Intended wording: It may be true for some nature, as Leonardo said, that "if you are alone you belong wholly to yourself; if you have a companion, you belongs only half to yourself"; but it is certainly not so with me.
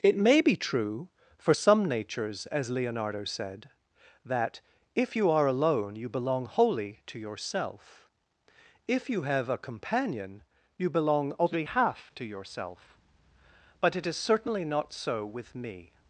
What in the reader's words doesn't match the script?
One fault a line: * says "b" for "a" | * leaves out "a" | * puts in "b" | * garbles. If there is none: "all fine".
* says "natures" for "nature"
* says "belong" for "belongs"